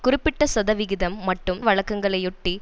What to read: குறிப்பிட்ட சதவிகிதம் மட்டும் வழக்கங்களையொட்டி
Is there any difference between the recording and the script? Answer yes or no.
no